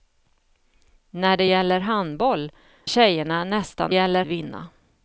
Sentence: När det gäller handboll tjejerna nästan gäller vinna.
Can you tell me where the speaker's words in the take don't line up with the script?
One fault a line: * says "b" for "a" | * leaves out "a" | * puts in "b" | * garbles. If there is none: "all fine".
all fine